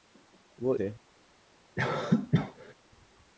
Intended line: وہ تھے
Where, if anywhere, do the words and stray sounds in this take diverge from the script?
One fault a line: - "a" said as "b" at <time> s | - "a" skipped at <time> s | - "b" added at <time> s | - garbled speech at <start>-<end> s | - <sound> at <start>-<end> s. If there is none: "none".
- cough at 1.8-2.7 s